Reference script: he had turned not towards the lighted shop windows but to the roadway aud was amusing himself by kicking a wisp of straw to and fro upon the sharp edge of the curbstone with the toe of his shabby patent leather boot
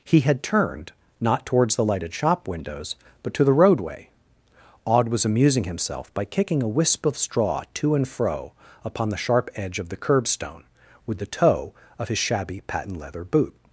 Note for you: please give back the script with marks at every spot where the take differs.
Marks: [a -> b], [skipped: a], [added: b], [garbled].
he had turned not towards the lighted shop windows but to the roadway aud was amusing himself by kicking a wisp of straw to and fro upon the sharp edge of the curbstone with the toe of his shabby patent leather boot